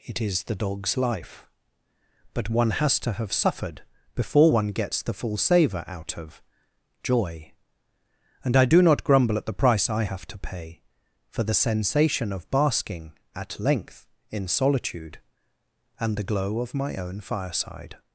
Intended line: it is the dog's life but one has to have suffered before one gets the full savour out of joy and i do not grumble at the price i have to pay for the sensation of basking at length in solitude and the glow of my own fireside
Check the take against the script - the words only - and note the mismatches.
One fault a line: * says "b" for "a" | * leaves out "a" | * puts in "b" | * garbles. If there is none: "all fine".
all fine